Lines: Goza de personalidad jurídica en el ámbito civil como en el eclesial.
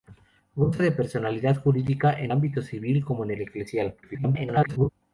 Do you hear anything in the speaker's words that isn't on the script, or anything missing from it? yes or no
yes